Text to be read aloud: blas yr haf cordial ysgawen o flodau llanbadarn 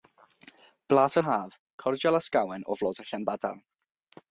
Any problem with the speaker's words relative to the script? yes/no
no